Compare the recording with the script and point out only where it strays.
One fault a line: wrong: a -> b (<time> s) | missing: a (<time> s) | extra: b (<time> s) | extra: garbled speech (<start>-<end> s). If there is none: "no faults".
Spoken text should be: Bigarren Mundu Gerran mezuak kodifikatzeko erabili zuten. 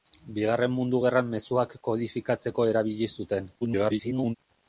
extra: garbled speech (3.6-4.4 s)